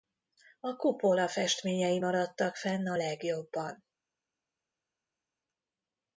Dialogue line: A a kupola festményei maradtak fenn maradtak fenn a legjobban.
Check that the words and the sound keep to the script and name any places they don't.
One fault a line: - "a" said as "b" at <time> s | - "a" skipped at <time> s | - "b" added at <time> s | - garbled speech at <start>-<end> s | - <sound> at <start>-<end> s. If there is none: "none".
- "a" skipped at 0.8 s
- "maradtak fenn" skipped at 2.9 s